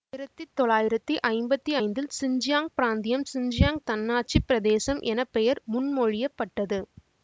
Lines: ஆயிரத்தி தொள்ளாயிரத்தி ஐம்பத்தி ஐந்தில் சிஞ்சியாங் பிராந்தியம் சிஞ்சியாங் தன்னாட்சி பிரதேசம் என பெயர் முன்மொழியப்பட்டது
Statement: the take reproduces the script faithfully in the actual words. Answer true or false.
true